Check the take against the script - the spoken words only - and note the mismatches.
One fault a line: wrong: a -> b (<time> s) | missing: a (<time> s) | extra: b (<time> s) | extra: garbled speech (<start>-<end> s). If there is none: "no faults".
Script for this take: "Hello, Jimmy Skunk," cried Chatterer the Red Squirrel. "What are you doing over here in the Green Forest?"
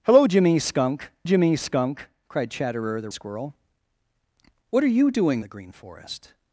extra: Jimmy Skunk (1.2 s)
missing: Red (3.1 s)
missing: over here in (5.4 s)